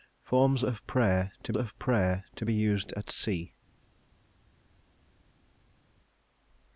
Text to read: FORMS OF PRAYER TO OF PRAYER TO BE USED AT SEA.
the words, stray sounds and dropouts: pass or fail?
pass